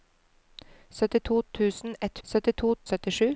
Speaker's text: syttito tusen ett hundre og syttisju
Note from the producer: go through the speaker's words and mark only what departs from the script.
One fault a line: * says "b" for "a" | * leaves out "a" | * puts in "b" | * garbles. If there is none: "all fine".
* says "syttito" for "hundre"